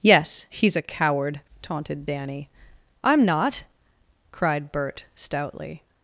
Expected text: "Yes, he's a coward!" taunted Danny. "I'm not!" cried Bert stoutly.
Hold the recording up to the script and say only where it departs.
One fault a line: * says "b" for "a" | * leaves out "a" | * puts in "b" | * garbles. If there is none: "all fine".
all fine